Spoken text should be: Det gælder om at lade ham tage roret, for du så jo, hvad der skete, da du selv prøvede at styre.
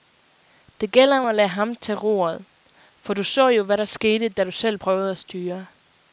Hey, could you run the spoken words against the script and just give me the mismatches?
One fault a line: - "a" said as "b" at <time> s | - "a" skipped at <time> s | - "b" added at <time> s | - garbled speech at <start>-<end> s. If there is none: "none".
none